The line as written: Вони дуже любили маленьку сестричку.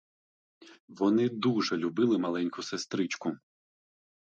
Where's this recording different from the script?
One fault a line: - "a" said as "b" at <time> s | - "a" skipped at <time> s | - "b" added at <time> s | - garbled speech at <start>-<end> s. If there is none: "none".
none